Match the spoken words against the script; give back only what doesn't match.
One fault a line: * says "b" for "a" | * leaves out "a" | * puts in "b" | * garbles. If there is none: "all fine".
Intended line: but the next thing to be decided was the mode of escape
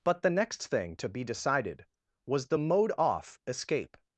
* says "off" for "of"